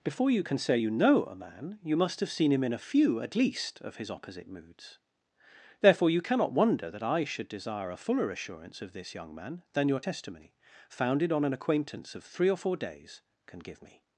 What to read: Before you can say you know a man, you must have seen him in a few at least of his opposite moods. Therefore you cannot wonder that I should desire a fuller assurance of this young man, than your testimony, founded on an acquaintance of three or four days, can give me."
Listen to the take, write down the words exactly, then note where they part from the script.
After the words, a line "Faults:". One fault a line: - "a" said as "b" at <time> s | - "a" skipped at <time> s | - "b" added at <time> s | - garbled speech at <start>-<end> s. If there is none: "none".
Before you can say you know a man, you must have seen him in a few at least of his opposite moods. Therefore you cannot wonder that I should desire a fuller assurance of this young man, than your testimony, founded on an acquaintance of three or four days, can give me."
Faults:
none